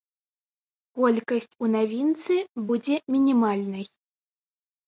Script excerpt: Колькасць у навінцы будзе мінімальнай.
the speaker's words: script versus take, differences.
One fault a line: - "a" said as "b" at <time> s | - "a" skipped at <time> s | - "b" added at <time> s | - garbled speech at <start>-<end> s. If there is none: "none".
none